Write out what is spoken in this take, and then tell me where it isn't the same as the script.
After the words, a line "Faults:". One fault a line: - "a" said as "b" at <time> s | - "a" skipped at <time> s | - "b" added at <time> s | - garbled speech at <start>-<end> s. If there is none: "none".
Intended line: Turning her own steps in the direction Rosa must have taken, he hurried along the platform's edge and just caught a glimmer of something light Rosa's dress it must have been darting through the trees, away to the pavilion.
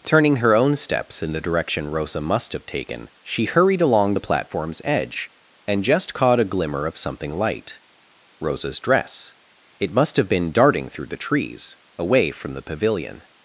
Turning her own steps in the direction Rosa must have taken, she hurried along the platform's edge and just caught a glimmer of something light Rosa's dress it must have been darting through the trees, away from the pavilion.
Faults:
- "he" said as "she" at 3.2 s
- "to" said as "from" at 12.3 s